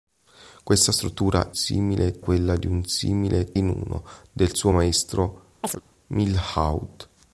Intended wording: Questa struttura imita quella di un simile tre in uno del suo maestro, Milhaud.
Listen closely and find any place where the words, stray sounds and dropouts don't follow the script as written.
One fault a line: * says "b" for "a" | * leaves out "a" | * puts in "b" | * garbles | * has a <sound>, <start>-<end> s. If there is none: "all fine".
* says "simile" for "imita"
* leaves out "tre"
* has a chirp, 5.6-5.8 s